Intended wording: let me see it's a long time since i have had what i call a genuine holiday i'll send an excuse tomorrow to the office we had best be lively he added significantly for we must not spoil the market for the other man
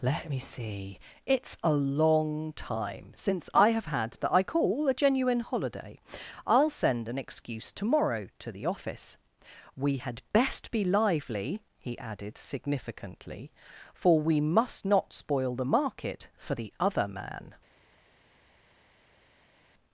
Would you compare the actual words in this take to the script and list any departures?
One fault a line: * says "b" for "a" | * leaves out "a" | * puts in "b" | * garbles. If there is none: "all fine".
* says "that" for "what"